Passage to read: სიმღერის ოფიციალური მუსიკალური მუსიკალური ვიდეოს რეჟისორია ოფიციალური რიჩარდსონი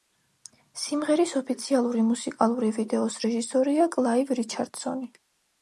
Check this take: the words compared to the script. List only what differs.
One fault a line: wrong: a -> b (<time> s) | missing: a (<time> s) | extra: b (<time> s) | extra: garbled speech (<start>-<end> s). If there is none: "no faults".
missing: მუსიკალური (2.7 s)
wrong: ოფიციალური -> კლაივ (4.0 s)